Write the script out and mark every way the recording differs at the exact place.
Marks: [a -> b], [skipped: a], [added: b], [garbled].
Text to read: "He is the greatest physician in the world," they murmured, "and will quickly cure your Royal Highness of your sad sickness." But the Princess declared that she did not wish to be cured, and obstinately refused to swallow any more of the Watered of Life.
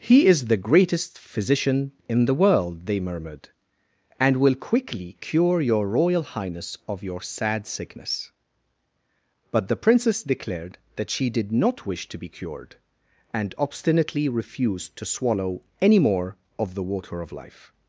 "He is the greatest physician in the world," they murmured, "and will quickly cure your Royal Highness of your sad sickness." But the Princess declared that she did not wish to be cured, and obstinately refused to swallow any more of the [Watered -> Water] of Life.